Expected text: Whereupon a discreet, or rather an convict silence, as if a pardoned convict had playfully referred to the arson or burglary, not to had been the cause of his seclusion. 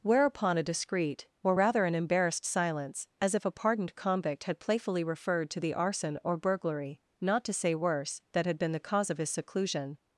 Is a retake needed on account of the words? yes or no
yes